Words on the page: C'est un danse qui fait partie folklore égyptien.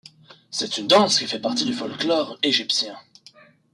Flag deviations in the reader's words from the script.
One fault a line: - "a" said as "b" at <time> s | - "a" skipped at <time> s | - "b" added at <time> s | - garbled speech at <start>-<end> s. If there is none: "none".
- "un" said as "une" at 0.8 s
- "du" added at 1.6 s